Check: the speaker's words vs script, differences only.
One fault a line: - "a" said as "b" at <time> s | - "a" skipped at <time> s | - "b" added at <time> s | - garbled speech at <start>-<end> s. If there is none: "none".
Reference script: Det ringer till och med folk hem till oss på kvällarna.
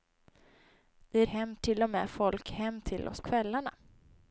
- "ringer" said as "hem" at 1.3 s
- "på" skipped at 3.2 s